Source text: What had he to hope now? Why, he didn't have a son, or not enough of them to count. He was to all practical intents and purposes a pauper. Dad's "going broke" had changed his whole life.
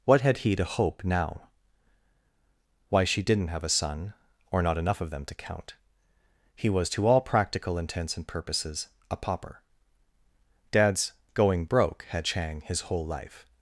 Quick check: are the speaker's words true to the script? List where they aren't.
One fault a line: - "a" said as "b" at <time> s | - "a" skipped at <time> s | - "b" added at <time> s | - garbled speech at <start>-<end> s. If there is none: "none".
- "he" said as "she" at 3.0 s
- "changed" said as "chang" at 12.2 s